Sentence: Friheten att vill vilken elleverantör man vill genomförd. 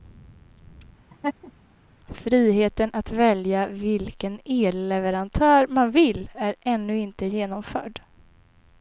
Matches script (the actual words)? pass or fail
fail